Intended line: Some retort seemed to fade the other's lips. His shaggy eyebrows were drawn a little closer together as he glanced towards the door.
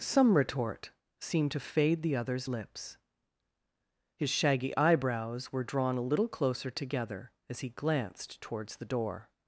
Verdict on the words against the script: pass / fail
pass